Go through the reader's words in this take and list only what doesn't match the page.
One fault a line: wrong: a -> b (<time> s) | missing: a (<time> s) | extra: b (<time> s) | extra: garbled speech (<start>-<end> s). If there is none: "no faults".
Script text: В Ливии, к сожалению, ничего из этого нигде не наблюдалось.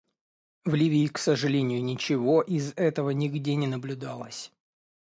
no faults